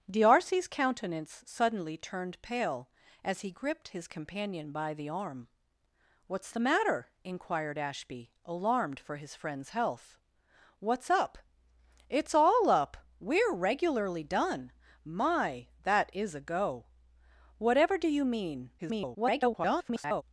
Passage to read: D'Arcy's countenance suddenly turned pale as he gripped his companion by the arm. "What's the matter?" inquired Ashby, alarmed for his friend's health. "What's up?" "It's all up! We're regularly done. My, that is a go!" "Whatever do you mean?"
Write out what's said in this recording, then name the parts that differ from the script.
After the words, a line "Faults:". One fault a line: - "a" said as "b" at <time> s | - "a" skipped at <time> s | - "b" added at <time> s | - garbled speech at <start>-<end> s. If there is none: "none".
D'Arcy's countenance suddenly turned pale as he gripped his companion by the arm. "What's the matter?" inquired Ashby, alarmed for his friend's health. "What's up?" "It's all up! We're regularly done. My, that is a go!" "Whatever do you mean?" [garbled]
Faults:
- garbled speech at 18.8-20.2 s